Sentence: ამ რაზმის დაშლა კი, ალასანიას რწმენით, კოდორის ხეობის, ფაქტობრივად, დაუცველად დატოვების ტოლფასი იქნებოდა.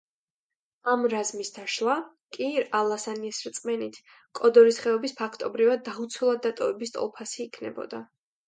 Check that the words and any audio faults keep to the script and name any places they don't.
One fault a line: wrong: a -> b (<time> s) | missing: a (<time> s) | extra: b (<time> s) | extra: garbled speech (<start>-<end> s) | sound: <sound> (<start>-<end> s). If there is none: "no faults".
no faults